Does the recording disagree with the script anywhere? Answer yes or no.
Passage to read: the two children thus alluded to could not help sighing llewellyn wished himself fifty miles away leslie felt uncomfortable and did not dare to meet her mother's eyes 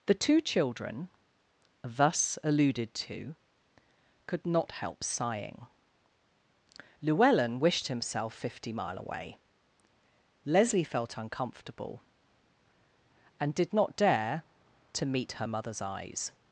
yes